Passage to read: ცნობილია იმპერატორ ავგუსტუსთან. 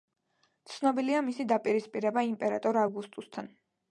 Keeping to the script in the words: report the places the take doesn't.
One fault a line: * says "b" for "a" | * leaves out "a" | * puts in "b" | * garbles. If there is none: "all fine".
* puts in "მისი დაპირისპირება"